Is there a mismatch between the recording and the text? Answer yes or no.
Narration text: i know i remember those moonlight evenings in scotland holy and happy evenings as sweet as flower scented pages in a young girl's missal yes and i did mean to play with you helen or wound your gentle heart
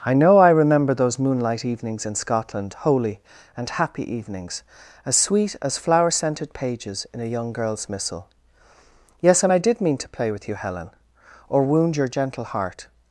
no